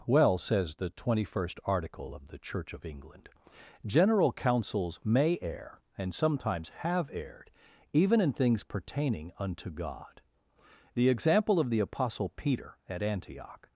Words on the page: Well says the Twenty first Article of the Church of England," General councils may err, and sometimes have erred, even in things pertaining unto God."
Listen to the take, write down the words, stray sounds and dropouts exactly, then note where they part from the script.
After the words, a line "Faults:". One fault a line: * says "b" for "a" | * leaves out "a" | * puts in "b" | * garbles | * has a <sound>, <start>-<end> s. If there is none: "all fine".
Well says the Twenty first Article of the Church of England," General councils may err, and sometimes have erred, even in things pertaining unto God." The example of the Apostle Peter at Antioch
Faults:
* puts in "The example of the Apostle Peter at Antioch"